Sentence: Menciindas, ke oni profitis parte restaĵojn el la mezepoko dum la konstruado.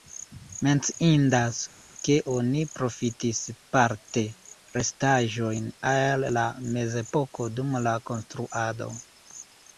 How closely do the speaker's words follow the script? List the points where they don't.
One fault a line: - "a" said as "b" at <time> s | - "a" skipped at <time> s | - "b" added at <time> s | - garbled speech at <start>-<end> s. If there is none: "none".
none